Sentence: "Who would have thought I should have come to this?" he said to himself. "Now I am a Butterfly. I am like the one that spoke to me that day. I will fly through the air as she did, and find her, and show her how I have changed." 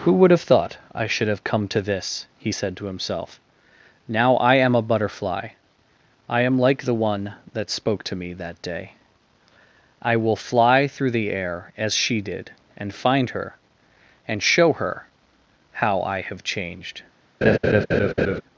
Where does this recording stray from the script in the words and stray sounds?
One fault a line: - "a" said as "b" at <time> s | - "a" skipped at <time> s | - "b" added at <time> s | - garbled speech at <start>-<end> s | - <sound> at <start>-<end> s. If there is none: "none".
- laugh at 17.4-18.4 s